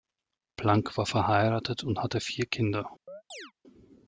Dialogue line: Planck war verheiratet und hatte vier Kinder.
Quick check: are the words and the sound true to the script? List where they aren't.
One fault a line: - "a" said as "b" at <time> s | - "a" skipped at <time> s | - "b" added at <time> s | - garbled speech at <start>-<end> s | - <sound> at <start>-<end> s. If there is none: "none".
- chirp at 3.1-3.5 s